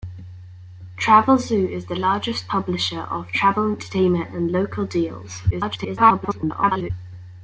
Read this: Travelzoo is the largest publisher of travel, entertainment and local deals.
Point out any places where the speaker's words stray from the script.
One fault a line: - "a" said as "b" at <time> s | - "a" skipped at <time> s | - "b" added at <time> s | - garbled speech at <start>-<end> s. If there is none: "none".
- garbled speech at 5.5-6.9 s